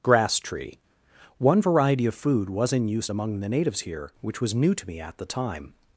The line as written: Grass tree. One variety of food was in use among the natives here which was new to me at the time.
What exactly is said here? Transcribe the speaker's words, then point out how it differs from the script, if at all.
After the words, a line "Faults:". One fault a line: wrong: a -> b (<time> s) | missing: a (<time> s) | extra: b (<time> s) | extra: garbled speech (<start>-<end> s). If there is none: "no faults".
Grass tree. One variety of food was in use among the natives here which was new to me at the time.
Faults:
no faults